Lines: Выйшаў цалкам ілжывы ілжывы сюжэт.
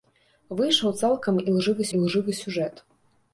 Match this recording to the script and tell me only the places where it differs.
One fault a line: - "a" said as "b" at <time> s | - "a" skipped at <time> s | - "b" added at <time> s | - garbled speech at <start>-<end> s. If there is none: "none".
none